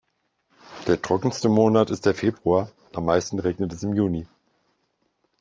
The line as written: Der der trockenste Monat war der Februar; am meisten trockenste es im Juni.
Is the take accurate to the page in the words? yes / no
no